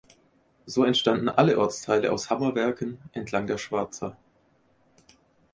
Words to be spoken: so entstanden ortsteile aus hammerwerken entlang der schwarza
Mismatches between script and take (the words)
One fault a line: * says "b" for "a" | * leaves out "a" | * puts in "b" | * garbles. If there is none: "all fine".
* puts in "alle"